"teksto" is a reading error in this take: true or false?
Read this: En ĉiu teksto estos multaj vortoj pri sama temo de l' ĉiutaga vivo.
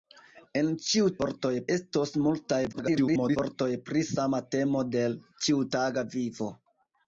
true